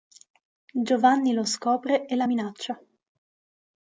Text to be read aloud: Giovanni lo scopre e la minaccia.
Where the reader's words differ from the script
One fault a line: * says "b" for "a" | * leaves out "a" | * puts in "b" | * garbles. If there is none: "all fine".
all fine